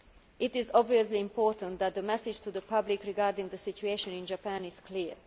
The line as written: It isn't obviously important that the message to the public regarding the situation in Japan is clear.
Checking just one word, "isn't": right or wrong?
wrong